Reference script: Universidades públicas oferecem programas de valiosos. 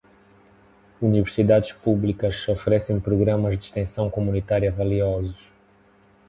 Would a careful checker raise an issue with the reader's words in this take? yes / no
yes